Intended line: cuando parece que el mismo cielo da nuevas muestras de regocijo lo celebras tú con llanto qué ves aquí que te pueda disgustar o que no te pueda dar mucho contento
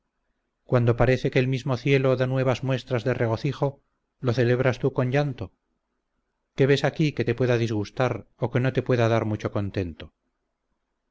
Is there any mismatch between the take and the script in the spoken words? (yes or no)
no